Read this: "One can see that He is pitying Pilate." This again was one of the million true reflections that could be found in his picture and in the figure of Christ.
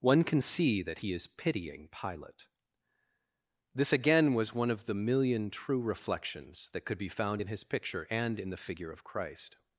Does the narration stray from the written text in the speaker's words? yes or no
no